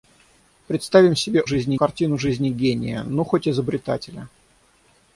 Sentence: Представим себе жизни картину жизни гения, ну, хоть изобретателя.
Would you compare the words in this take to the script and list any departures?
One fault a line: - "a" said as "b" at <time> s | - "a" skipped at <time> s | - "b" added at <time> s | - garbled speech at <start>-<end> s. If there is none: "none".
none